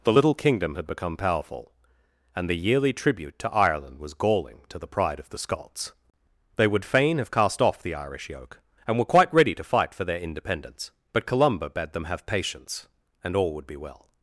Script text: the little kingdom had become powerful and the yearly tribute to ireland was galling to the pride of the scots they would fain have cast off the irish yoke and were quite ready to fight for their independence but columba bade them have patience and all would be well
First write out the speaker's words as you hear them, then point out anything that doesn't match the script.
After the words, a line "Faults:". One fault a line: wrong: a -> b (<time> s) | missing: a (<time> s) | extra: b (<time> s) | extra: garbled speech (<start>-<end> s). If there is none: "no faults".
the little kingdom had become powerful and the yearly tribute to ireland was galling to the pride of the scots they would fain have cast off the irish yoke and were quite ready to fight for their independence but columba bade them have patience and all would be well
Faults:
no faults